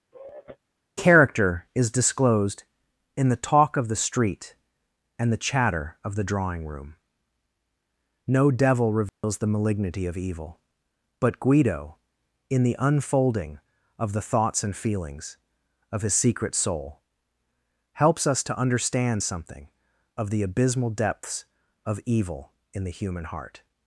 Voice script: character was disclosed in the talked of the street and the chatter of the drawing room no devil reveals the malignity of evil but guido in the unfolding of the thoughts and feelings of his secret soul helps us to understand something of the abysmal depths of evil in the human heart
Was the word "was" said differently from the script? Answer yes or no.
yes